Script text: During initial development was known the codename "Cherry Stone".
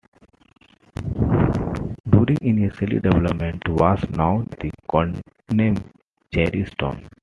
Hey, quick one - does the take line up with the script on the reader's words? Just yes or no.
yes